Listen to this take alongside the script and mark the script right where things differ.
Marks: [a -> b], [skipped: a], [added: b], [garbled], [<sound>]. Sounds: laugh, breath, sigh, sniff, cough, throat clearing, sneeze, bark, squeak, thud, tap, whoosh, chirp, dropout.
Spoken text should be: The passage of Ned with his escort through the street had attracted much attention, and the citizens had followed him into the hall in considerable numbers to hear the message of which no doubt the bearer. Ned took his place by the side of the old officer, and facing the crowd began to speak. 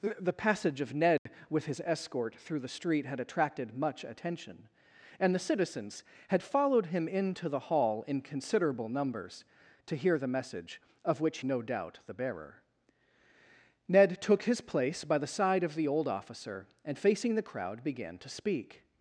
The passage of Ned [dropout] with his escort through the street had attracted much attention, and the citizens had followed him into the hall in considerable numbers to hear the message of which no doubt the bearer. Ned took his place by the side of the old officer, and facing the crowd began to speak.